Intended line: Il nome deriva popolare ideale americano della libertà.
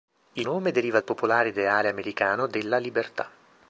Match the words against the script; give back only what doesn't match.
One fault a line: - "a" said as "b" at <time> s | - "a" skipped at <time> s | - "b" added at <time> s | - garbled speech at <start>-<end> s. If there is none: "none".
none